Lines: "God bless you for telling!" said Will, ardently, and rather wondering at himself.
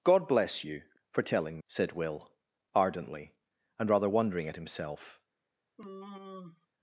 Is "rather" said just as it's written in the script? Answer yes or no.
yes